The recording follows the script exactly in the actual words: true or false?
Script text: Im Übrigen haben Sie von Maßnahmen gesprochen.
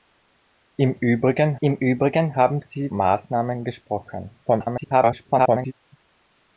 false